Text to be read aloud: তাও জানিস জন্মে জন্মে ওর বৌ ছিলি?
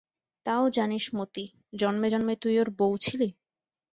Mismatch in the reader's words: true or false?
true